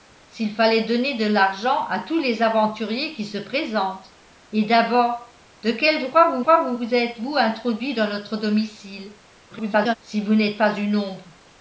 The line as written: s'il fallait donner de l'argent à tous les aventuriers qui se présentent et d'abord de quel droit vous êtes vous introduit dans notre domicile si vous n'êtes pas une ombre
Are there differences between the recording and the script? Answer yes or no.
yes